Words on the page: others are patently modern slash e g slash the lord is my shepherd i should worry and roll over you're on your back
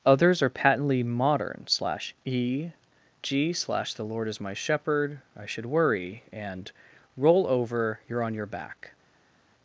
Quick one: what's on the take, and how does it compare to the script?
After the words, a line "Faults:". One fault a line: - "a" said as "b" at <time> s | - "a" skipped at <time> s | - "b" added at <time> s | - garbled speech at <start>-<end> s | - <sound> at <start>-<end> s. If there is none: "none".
others are patently modern slash e g slash the lord is my shepherd i should worry and roll over you're on your back
Faults:
none